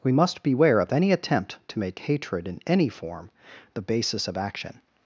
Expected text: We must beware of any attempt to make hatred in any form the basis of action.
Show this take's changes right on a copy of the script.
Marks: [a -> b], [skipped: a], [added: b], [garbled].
We must beware of any attempt to make hatred in any form the basis of action.